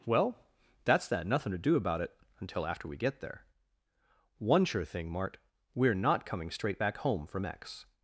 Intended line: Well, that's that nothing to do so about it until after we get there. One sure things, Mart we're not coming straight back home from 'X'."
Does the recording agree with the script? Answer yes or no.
no